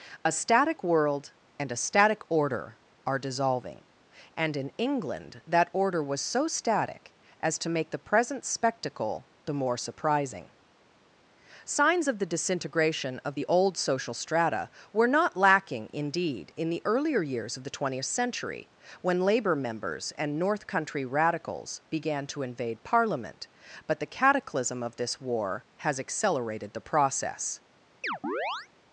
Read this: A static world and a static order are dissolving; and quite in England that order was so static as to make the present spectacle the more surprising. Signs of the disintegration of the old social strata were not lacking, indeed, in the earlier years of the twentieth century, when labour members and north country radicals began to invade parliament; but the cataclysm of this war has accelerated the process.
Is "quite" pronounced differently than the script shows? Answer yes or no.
yes